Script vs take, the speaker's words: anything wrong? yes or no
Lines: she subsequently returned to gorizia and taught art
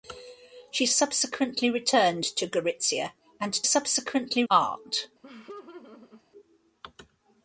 yes